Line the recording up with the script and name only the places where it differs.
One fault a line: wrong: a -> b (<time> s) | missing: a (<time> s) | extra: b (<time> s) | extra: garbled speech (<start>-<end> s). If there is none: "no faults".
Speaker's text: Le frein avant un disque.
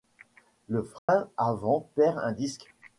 extra: perd (2.0 s)